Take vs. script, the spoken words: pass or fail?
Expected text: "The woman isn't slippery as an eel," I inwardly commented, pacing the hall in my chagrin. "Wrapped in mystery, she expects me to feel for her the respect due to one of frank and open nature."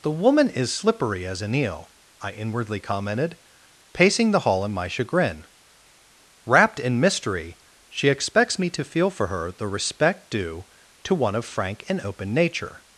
fail